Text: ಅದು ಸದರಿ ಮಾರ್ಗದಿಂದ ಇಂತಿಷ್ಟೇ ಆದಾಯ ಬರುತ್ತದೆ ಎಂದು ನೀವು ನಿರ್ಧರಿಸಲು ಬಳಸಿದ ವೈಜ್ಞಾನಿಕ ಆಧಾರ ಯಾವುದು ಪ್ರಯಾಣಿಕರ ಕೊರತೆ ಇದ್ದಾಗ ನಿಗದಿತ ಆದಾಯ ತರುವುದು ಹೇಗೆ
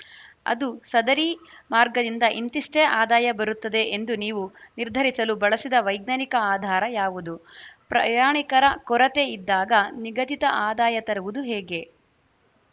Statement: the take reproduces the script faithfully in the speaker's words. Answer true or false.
true